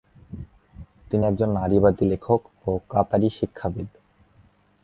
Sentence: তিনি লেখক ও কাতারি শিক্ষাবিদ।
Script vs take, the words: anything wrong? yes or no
yes